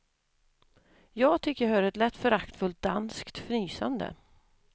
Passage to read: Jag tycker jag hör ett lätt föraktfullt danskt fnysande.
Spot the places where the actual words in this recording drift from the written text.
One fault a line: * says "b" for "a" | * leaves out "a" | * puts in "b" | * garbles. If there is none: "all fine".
all fine